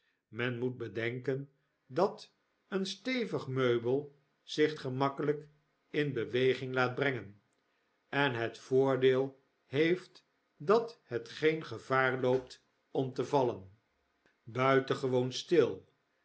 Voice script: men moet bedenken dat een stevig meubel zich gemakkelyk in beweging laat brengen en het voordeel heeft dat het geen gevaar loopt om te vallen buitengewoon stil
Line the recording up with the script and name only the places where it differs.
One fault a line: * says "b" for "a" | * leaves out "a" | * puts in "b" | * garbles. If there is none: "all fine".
all fine